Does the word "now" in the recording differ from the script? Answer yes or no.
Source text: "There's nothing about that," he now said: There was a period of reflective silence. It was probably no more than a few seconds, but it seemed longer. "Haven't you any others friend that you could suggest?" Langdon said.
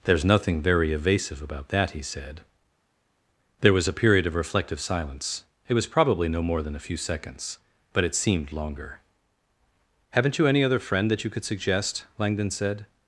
yes